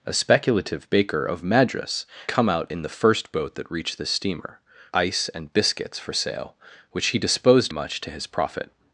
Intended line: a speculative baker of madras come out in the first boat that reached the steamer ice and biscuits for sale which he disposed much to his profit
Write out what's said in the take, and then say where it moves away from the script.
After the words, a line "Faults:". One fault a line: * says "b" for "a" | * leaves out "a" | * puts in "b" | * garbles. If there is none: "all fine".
a speculative baker of madras come out in the first boat that reached the steamer ice and biscuits for sale which he disposed much to his profit
Faults:
all fine